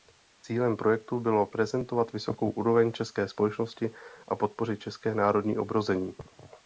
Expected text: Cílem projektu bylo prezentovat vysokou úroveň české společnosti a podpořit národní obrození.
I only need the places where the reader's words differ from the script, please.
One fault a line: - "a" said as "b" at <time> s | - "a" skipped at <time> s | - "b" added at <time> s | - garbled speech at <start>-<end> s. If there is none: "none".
- "české" added at 4.8 s